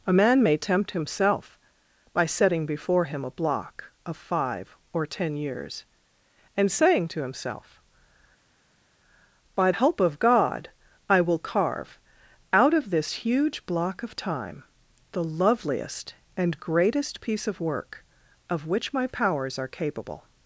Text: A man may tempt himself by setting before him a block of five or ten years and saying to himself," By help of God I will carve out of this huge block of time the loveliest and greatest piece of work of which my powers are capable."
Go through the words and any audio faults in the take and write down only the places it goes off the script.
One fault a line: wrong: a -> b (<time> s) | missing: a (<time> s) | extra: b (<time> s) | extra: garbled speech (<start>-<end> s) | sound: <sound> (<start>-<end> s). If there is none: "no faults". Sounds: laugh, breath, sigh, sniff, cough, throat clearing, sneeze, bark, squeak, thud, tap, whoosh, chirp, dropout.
no faults